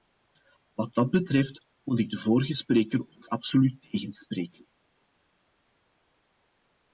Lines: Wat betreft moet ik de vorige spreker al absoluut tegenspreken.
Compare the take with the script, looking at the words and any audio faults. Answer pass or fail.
fail